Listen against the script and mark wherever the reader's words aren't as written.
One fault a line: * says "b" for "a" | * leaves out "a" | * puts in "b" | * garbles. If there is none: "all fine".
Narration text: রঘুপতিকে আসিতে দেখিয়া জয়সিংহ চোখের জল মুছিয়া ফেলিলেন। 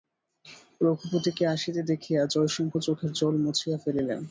all fine